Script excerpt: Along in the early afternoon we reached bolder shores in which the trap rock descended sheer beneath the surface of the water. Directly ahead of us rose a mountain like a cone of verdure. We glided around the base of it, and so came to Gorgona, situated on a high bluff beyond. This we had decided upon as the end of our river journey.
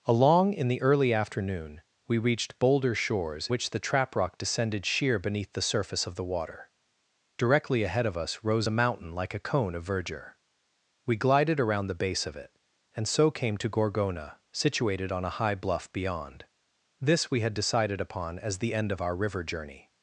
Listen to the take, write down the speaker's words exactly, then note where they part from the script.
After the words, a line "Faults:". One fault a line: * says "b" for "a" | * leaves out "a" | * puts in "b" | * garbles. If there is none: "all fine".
Along in the early afternoon we reached bolder shores which the trap rock descended sheer beneath the surface of the water. Directly ahead of us rose a mountain like a cone of verdure. We glided around the base of it, and so came to Gorgona, situated on a high bluff beyond. This we had decided upon as the end of our river journey.
Faults:
* leaves out "in"